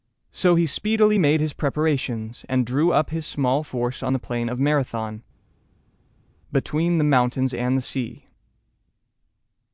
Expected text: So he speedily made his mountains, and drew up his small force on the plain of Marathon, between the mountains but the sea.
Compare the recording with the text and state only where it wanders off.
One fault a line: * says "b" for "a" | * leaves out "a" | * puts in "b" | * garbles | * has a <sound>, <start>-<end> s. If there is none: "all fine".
* says "preparations" for "mountains"
* says "and" for "but"